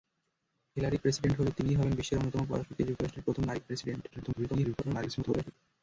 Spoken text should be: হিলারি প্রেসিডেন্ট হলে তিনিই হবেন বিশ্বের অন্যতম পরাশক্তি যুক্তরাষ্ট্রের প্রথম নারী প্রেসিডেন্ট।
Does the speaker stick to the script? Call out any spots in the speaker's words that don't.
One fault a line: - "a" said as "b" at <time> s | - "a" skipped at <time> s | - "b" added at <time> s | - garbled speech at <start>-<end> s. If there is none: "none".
- garbled speech at 4.1-5.5 s